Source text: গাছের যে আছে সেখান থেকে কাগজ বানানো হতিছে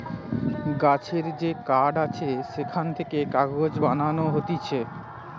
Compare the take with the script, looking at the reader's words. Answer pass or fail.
fail